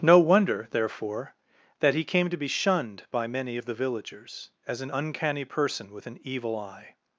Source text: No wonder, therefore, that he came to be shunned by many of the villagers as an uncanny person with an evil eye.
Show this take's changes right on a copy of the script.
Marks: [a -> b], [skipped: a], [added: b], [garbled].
No wonder, therefore, that he came to be shunned by many of the villagers as an uncanny person with an evil eye.